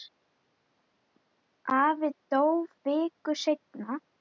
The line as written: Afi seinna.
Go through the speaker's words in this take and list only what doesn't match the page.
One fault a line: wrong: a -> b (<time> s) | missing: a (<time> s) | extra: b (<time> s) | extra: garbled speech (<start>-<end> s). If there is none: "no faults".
extra: dó viku (2.3 s)